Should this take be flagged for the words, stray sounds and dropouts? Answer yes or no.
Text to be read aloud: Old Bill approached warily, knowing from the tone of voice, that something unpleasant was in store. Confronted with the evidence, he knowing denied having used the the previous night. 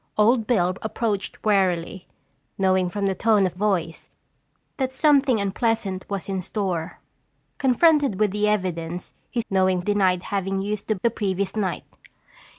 no